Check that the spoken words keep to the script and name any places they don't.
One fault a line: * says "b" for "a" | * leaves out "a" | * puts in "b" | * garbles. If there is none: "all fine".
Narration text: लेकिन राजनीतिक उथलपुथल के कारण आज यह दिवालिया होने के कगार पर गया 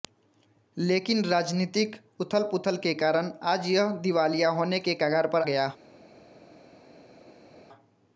all fine